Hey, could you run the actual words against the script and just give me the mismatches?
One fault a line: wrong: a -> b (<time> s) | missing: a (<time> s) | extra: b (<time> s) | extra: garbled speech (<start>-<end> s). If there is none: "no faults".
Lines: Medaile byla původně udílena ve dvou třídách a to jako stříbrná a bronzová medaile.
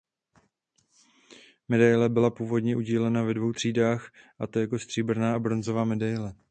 no faults